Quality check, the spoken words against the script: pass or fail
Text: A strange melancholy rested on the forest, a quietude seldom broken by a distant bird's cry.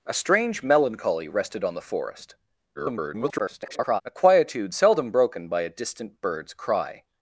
fail